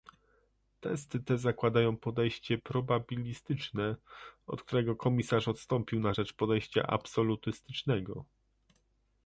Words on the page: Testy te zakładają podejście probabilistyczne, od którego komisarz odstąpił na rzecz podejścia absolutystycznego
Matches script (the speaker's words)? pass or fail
pass